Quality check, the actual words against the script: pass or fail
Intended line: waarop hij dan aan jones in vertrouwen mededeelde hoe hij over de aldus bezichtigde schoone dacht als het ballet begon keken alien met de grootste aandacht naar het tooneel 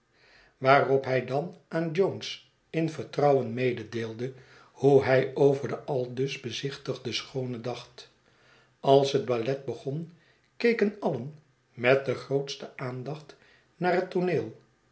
pass